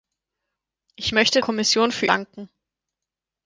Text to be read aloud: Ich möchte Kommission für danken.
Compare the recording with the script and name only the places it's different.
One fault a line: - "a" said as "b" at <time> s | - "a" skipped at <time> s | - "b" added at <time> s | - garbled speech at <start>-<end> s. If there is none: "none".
none